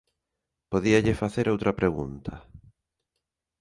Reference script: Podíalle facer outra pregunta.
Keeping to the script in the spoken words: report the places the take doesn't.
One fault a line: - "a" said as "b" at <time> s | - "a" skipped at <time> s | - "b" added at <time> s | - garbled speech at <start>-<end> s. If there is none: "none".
none